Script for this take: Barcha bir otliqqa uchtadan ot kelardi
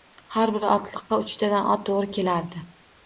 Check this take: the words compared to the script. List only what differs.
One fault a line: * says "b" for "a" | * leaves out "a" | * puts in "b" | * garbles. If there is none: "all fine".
* says "Har" for "Barcha"
* puts in "to`g`ri"